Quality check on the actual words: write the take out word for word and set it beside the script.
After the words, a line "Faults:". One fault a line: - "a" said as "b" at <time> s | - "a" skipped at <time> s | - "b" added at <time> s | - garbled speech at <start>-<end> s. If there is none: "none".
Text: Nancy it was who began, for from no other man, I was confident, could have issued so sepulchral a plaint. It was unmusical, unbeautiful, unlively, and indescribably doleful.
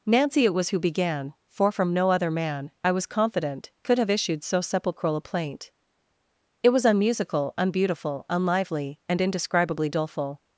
Nancy it was who began, for from no other man, I was confident, could have issued so sepulchral a plaint. It was unmusical, unbeautiful, unlively, and indescribably doleful.
Faults:
none